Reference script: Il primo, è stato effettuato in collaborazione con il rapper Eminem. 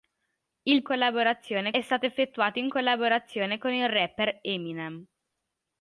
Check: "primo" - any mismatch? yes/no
yes